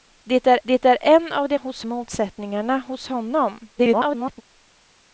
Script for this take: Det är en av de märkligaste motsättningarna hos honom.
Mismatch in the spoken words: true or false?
true